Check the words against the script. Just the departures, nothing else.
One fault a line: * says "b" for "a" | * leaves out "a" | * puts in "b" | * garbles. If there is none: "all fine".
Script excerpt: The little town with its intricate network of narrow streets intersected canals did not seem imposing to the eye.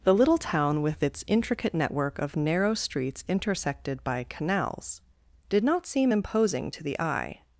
* puts in "by"